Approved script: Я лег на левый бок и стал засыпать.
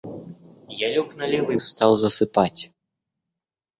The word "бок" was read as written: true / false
false